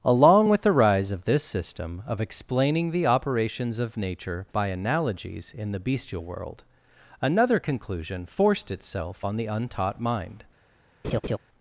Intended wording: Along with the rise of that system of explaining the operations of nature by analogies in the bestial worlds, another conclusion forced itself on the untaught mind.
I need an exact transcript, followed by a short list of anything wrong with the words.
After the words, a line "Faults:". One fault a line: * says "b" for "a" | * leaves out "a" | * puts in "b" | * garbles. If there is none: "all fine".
Along with the rise of this system of explaining the operations of nature by analogies in the bestial world, another conclusion forced itself on the untaught mind.
Faults:
* says "this" for "that"
* says "world" for "worlds"